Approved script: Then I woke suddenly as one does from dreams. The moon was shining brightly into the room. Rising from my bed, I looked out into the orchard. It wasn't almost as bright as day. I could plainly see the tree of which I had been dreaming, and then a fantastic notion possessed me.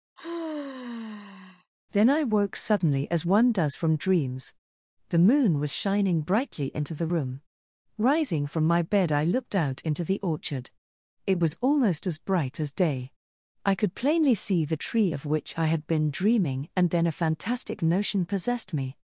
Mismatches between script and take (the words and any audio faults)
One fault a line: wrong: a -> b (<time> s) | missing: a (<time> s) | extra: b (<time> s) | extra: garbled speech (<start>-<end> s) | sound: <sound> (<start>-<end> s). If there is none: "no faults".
sound: sigh (0.2-1.7 s)
wrong: wasn't -> was (11.4 s)